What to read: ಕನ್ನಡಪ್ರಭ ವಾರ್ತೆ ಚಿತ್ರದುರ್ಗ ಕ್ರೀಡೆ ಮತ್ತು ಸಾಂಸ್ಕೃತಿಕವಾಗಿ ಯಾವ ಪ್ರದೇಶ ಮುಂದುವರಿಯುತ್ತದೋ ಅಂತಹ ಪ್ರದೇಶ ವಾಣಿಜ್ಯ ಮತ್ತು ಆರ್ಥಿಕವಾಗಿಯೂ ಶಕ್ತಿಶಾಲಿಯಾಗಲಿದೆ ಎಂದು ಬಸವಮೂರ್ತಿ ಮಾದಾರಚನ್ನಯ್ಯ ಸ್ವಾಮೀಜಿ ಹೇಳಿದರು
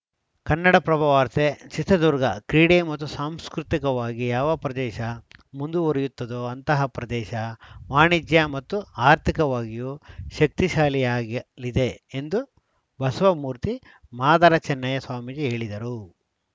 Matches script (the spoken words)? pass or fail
pass